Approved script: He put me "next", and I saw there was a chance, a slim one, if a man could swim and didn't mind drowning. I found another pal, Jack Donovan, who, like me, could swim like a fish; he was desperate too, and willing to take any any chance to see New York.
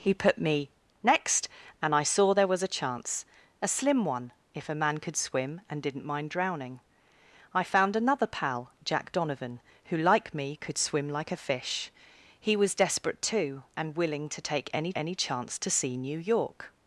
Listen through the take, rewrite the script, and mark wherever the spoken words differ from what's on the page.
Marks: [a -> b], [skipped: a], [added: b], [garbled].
He put me "next", and I saw there was a chance, a slim one, if a man could swim and didn't mind drowning. I found another pal, Jack Donovan, who, like me, could swim like a fish; he was desperate too, and willing to take any any chance to see New York.